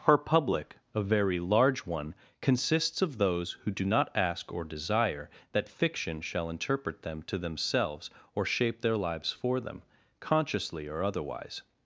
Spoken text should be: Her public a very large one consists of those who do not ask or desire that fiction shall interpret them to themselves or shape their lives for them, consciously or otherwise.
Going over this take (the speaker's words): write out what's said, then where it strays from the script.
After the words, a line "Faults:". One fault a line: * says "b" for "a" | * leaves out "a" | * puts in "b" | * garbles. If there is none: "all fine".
Her public a very large one consists of those who do not ask or desire that fiction shall interpret them to themselves or shape their lives for them, consciously or otherwise.
Faults:
all fine